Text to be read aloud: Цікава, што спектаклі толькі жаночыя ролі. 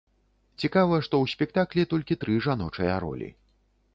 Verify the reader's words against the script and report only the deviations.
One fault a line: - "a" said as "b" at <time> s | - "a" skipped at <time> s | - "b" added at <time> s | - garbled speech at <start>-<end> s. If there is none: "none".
- "ў" added at 1.2 s
- "тры" added at 2.2 s